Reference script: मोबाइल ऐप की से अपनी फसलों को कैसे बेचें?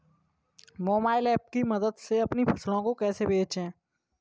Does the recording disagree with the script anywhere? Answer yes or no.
yes